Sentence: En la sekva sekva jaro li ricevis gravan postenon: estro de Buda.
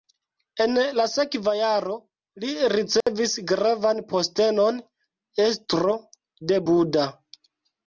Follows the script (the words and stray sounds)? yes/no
no